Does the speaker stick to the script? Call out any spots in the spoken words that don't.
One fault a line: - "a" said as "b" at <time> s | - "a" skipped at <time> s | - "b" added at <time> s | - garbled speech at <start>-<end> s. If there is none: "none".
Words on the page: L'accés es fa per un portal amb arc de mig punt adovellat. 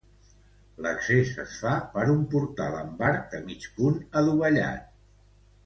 none